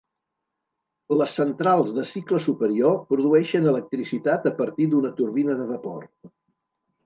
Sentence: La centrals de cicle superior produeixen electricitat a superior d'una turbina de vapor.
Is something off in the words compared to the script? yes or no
yes